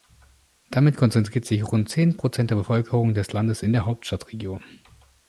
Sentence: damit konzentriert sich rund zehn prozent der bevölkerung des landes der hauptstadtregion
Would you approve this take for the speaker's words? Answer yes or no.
no